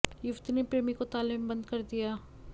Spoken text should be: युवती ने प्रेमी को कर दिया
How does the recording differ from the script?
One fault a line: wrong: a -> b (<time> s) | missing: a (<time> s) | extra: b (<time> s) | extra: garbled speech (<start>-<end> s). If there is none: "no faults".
extra: ताले में बंद (1.1 s)